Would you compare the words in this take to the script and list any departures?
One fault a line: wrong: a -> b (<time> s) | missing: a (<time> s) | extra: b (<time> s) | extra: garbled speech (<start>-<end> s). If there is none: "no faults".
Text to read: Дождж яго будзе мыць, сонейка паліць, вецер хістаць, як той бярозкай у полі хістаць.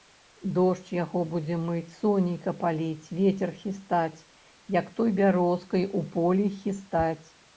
no faults